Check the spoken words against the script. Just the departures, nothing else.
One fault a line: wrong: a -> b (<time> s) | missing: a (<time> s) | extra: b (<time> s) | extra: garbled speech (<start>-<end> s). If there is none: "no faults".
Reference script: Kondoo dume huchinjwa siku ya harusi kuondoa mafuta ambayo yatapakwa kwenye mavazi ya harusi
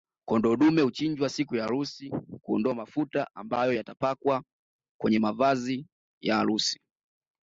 no faults